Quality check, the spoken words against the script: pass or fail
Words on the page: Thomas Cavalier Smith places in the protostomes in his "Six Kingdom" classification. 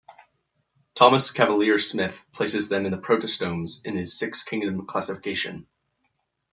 fail